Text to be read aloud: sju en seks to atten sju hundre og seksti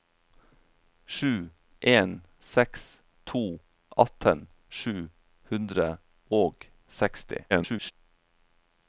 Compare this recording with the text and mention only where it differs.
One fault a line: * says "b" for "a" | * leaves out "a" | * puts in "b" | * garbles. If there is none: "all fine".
* garbles